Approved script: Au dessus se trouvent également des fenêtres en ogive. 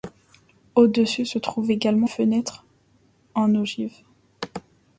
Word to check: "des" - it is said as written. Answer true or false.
false